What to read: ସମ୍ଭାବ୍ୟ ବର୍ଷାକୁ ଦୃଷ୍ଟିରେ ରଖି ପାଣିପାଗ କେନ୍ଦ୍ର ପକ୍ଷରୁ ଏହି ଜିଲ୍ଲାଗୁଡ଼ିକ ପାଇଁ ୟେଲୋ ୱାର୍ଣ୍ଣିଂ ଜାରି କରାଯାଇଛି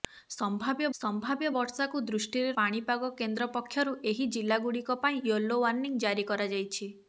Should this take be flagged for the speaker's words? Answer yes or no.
yes